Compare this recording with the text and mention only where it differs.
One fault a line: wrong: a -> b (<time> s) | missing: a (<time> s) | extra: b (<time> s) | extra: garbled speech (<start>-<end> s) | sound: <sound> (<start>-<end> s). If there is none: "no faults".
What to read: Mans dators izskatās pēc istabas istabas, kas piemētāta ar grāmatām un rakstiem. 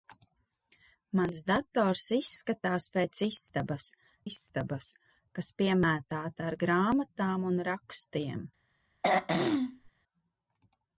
sound: throat clearing (9.0-9.9 s)